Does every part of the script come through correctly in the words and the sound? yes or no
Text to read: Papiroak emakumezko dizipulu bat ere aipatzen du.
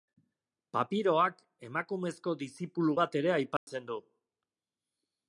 no